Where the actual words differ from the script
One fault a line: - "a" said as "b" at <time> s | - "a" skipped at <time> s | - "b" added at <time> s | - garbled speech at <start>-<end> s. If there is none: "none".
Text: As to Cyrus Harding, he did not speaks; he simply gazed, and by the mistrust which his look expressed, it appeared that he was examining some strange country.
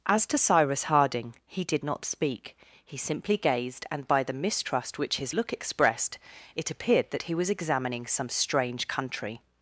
- "speaks" said as "speak" at 2.1 s